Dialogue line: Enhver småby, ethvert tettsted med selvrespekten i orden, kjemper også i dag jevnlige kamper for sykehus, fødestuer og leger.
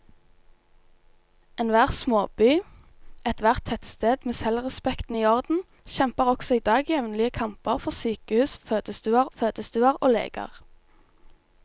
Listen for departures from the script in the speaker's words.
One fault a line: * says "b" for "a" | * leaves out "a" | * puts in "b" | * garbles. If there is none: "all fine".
* puts in "fødestuer"